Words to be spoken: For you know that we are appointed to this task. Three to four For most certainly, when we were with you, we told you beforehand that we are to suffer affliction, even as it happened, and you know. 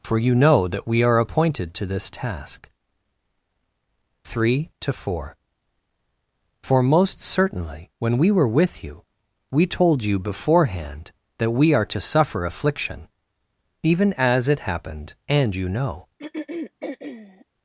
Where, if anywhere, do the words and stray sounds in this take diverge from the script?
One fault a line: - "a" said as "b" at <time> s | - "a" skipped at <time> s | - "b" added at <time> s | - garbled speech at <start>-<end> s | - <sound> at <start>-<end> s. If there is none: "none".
- throat clearing at 16.2-17.5 s